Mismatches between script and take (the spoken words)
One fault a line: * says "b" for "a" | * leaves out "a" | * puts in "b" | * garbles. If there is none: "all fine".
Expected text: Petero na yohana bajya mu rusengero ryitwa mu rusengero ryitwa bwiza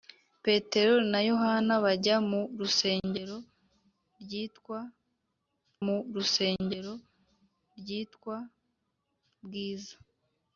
all fine